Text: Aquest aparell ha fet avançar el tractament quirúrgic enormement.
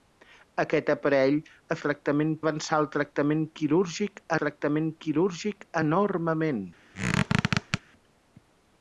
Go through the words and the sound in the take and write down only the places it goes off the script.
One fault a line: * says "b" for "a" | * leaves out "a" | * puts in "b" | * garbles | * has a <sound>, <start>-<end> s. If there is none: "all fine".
* says "tractament" for "fet"
* puts in "tractament quirúrgic"
* has a squeak, 6.9-7.8 s